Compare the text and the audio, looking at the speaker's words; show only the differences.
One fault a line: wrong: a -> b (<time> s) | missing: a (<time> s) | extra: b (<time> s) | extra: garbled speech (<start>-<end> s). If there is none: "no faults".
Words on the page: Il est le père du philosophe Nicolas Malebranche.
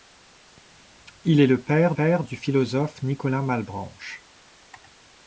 extra: père (1.9 s)